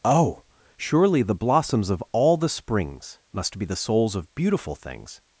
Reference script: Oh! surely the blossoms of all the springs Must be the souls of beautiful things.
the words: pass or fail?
pass